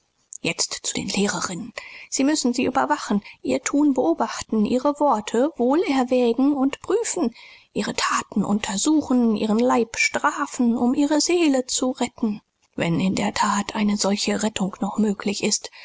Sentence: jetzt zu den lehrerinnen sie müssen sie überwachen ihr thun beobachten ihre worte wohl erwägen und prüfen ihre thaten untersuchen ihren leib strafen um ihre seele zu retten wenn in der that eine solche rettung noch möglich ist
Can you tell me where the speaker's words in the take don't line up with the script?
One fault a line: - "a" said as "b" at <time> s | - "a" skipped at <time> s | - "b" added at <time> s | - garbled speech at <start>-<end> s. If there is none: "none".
none